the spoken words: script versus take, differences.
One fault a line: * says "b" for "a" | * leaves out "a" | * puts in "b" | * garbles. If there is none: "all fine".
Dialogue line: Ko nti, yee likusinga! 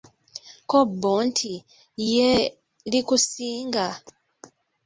* puts in "bbo"